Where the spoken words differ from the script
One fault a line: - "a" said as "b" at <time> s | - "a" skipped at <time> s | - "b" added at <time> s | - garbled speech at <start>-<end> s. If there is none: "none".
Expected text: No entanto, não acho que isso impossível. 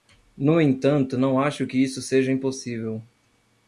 - "seja" added at 2.0 s